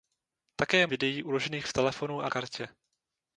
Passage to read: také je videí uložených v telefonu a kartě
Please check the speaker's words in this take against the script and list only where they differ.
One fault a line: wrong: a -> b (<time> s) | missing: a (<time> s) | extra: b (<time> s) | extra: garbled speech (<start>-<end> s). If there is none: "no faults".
no faults